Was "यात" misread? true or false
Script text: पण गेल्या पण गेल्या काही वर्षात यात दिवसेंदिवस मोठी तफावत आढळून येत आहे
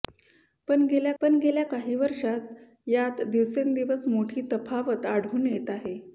false